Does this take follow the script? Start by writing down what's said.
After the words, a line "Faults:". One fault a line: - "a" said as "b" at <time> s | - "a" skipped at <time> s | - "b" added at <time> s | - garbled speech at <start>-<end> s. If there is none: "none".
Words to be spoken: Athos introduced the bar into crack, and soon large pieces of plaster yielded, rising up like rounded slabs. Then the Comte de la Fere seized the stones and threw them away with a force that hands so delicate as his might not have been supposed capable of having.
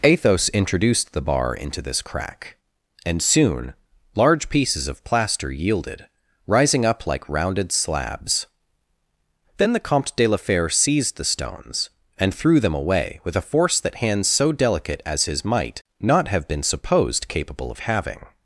Athos introduced the bar into this crack, and soon large pieces of plaster yielded, rising up like rounded slabs. Then the Comte de la Fere seized the stones and threw them away with a force that hands so delicate as his might not have been supposed capable of having.
Faults:
- "this" added at 1.8 s